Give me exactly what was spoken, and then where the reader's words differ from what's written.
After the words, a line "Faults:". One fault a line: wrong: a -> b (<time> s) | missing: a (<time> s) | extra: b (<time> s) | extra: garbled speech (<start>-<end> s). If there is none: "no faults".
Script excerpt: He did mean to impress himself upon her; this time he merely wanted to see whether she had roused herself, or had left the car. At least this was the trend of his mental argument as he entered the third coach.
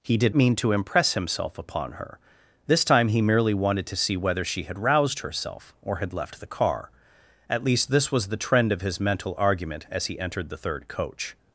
He did mean to impress himself upon her; this time he merely wanted to see whether she had roused herself, or had left the car. At least this was the trend of his mental argument as he entered the third coach.
Faults:
no faults